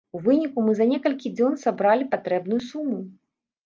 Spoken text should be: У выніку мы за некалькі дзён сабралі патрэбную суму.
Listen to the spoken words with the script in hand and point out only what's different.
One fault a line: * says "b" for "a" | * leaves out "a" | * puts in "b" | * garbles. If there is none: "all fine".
all fine